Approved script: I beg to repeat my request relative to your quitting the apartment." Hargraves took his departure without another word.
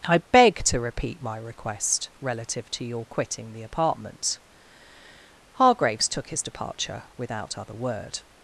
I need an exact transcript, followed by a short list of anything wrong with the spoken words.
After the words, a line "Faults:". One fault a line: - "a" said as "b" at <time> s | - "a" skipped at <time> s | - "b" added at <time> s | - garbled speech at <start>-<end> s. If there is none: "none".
I beg to repeat my request relative to your quitting the apartment." Hargraves took his departure without other word.
Faults:
- "another" said as "other" at 7.6 s